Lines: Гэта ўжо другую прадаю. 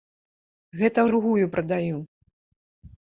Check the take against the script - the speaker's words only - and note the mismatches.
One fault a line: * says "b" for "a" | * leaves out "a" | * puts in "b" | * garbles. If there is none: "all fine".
* leaves out "ўжо"